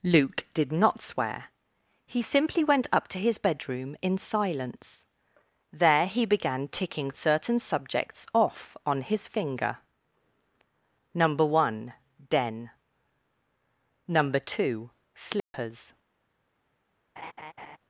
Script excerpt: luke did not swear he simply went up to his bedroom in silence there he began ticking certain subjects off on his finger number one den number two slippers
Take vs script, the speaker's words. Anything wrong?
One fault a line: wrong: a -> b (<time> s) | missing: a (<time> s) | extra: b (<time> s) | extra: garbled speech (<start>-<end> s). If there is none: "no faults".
no faults